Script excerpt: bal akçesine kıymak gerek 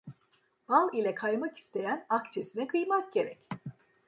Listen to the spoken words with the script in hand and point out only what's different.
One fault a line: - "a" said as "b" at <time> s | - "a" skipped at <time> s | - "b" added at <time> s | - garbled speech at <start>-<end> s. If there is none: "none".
- "ile kaymak isteyen" added at 0.9 s